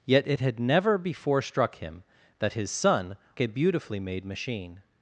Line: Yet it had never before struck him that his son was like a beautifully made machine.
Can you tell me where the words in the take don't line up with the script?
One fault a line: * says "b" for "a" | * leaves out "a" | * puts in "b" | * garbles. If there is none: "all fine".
* leaves out "was like"